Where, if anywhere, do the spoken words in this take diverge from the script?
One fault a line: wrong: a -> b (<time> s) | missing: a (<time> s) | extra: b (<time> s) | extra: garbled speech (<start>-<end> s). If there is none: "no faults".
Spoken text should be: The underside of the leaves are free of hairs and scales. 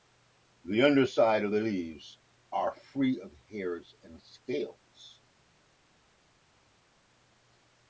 no faults